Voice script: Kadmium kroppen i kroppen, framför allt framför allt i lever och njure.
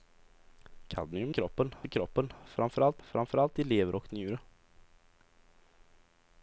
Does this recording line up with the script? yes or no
yes